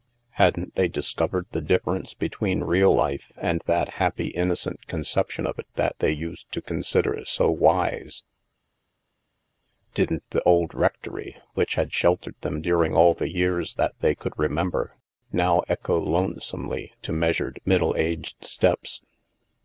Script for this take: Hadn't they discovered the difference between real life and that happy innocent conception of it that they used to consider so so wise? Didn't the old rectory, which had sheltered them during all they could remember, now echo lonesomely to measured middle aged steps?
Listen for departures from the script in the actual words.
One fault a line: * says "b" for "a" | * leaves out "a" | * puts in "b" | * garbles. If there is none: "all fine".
* leaves out "so"
* puts in "the years that"